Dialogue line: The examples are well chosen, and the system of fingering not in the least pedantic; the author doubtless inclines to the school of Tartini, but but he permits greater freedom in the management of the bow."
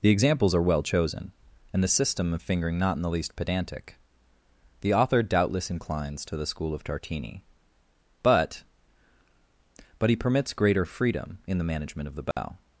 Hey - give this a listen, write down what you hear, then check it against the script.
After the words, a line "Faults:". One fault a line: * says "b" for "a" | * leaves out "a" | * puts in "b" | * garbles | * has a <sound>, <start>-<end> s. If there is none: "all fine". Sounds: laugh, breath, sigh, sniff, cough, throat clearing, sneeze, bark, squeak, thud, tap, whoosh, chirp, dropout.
The examples are well chosen, and the system of fingering not in the least pedantic; the author doubtless inclines to the school of Tartini, but but he permits greater freedom in the management of the bow."
Faults:
* has a dropout, 12.3-12.4 s